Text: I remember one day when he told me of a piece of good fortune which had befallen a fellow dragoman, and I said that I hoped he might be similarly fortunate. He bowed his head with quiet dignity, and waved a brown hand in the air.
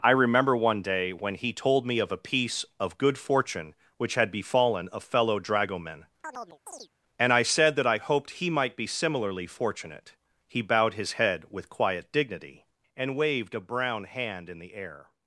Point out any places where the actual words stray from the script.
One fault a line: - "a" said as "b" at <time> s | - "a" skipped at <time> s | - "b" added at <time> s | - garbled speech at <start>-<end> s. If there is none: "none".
none